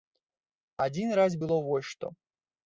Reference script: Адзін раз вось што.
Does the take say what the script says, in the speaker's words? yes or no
no